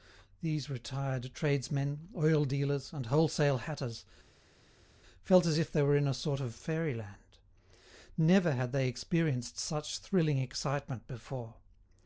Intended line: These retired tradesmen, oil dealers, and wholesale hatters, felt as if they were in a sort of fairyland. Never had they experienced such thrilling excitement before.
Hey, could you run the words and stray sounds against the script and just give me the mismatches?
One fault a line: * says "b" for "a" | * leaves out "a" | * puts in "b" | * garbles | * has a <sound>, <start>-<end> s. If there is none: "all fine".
all fine